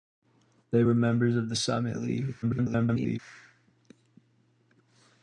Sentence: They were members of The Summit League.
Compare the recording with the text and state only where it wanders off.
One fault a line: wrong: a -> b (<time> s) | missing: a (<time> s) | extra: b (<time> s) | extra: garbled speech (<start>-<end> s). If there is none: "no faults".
extra: garbled speech (2.4-3.2 s)